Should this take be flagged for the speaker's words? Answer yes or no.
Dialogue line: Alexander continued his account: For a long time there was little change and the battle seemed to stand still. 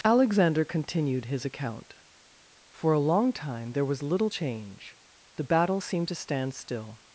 yes